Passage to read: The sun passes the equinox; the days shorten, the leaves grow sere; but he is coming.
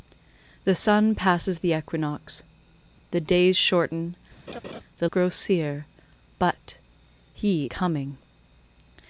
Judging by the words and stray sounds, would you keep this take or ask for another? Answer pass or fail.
fail